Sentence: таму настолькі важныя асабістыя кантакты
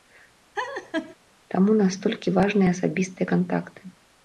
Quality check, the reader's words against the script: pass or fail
pass